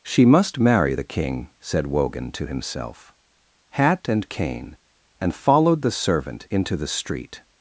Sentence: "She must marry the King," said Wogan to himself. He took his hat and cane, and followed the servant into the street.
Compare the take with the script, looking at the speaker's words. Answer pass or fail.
fail